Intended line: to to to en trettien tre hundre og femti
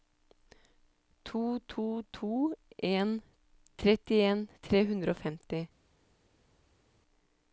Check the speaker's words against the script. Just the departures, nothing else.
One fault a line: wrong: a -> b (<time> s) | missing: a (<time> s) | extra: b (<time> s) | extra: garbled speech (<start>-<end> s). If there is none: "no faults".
no faults